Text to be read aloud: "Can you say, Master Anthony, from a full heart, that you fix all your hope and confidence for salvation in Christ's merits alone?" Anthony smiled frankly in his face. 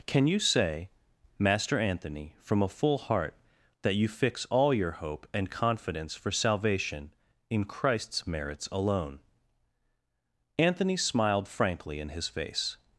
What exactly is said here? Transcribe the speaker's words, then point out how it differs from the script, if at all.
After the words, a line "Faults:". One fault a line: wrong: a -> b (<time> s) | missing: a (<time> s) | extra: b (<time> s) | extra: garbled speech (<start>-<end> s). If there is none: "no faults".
"Can you say, Master Anthony, from a full heart, that you fix all your hope and confidence for salvation in Christ's merits alone?" Anthony smiled frankly in his face.
Faults:
no faults